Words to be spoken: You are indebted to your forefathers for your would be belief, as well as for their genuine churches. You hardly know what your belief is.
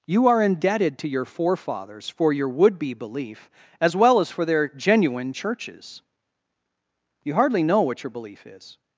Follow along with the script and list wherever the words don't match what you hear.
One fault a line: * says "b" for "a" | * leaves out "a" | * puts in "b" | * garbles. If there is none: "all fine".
all fine